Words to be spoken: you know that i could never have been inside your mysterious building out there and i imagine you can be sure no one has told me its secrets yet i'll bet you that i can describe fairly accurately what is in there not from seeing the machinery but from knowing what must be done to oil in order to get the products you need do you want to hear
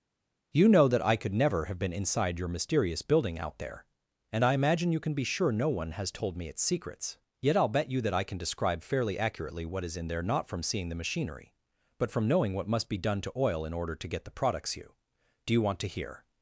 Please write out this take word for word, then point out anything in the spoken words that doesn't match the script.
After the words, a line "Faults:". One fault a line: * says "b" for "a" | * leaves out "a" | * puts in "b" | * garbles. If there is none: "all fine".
you know that i could never have been inside your mysterious building out there and i imagine you can be sure no one has told me its secrets yet i'll bet you that i can describe fairly accurately what is in there not from seeing the machinery but from knowing what must be done to oil in order to get the products you do you want to hear
Faults:
* leaves out "need"